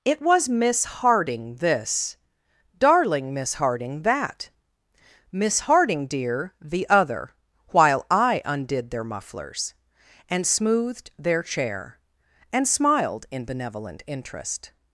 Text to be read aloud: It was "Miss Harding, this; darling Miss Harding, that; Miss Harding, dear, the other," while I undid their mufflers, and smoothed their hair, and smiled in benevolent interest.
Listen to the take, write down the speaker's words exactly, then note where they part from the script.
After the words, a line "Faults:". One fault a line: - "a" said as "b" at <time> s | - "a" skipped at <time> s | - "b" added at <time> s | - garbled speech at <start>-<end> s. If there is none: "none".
It was "Miss Harding, this; darling Miss Harding, that; Miss Harding, dear, the other," while I undid their mufflers, and smoothed their chair, and smiled in benevolent interest.
Faults:
- "hair" said as "chair" at 11.4 s